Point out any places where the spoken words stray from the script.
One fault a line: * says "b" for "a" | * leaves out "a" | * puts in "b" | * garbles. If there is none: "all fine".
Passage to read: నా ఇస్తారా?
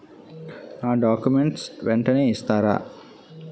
* puts in "డాక్యుమెంట్స్ వెంటనే"